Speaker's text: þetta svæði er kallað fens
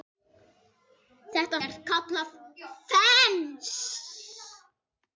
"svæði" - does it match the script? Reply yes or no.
no